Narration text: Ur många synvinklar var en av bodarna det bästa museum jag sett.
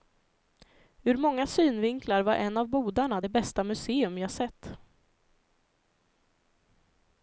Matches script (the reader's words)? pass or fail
pass